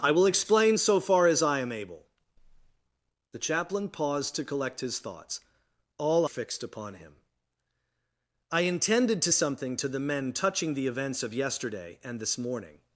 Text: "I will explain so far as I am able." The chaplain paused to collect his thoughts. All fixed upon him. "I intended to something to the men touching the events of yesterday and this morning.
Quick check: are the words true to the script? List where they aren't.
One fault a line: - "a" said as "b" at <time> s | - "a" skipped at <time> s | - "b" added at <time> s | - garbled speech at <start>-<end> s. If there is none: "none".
none